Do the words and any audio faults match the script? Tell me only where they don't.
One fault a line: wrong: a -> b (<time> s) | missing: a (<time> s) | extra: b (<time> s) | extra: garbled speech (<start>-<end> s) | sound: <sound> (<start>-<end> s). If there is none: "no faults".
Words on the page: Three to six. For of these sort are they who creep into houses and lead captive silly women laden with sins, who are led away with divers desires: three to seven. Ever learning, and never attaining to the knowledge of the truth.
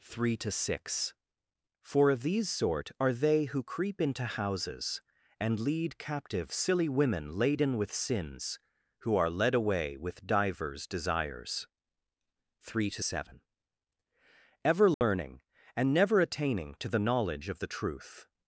sound: dropout (14.9-15.0 s)